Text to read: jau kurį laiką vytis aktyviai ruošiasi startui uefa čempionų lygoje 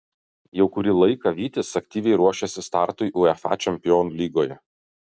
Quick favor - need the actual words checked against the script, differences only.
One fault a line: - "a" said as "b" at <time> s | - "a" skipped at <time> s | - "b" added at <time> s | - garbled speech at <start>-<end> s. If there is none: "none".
none